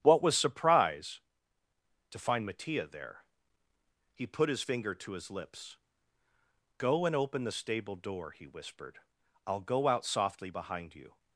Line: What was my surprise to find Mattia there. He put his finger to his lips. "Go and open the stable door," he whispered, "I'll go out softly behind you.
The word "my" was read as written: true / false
false